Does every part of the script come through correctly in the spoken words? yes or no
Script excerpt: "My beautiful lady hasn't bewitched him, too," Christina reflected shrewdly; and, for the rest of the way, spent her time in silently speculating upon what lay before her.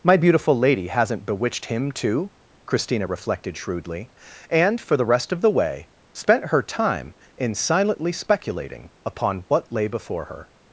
yes